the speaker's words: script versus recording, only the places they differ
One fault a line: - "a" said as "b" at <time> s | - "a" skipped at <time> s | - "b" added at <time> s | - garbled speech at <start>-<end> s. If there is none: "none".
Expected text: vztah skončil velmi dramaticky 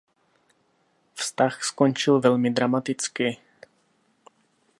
none